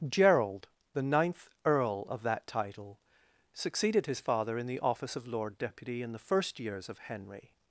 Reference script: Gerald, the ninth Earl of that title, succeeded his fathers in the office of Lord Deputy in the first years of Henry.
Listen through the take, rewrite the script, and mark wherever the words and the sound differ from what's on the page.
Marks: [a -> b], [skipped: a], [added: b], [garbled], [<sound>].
Gerald, the ninth Earl of that title, succeeded his [fathers -> father] in the office of Lord Deputy in the first years of Henry.